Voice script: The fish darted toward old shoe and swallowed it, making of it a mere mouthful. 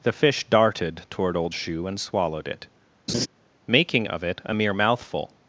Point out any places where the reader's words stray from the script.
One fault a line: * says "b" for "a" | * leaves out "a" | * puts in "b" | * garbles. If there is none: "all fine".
all fine